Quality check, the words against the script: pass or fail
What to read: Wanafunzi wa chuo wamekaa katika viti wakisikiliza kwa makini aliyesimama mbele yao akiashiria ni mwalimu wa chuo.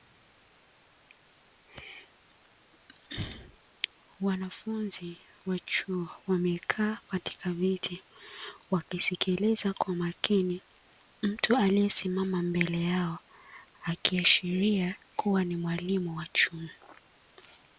fail